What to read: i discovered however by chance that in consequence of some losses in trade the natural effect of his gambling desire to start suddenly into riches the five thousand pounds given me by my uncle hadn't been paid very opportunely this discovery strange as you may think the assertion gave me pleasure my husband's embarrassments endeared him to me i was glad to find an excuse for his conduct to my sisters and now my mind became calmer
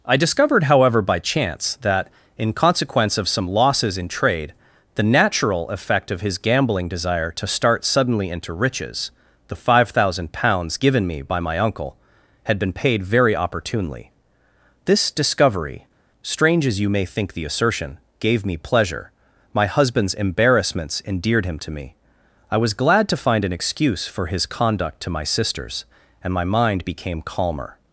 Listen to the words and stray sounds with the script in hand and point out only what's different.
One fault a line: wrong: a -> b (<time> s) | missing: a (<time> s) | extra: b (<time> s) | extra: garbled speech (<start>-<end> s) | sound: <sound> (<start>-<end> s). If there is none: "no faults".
wrong: hadn't -> had (12.4 s)
missing: now (26.3 s)